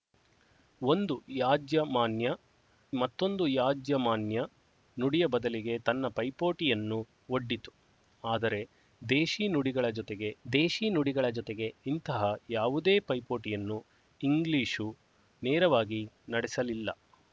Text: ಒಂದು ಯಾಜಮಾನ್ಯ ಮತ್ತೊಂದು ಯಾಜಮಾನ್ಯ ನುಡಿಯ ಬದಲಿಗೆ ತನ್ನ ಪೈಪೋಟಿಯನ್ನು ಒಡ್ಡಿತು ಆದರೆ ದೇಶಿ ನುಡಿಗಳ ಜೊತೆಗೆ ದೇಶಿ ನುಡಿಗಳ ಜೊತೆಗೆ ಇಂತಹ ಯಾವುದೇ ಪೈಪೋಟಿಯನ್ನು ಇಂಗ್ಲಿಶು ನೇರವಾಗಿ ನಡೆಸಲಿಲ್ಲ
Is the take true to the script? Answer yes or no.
yes